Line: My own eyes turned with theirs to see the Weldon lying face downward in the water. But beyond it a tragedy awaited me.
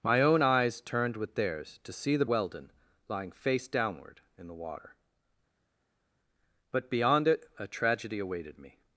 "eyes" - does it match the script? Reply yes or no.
yes